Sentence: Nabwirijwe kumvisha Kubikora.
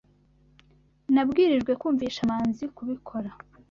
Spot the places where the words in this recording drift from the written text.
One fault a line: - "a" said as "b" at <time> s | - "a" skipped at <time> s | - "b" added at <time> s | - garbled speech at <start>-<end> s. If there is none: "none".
- "Manzi" added at 2.3 s